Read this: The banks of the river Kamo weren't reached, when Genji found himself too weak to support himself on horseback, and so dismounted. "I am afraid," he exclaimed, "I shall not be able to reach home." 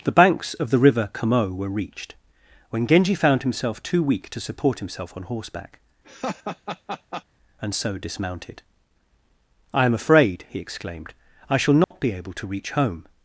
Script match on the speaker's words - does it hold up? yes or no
no